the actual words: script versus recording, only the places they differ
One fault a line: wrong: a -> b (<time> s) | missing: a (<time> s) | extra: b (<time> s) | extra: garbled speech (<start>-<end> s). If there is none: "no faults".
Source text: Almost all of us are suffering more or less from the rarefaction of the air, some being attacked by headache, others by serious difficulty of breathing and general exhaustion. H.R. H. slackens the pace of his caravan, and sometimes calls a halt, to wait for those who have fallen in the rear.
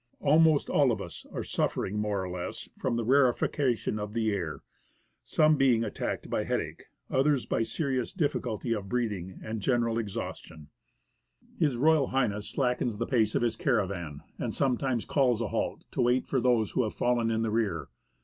no faults